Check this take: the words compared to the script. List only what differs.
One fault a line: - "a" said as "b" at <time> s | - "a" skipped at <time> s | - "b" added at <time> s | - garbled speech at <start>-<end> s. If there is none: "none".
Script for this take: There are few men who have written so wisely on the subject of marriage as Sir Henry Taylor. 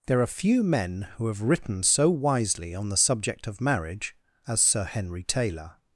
none